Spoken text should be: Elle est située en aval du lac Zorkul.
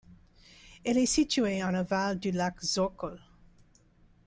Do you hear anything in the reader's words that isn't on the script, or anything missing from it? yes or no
no